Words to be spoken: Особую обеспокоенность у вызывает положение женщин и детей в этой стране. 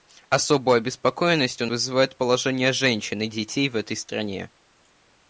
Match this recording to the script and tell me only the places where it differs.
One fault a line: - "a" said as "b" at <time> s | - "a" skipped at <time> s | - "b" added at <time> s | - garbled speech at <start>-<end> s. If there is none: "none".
none